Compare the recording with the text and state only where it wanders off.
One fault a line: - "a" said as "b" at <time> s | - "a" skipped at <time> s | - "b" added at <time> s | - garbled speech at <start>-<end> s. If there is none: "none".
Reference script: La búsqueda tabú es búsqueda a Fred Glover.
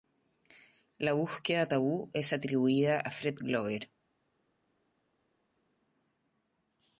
- "búsqueda" said as "atribuida" at 2.3 s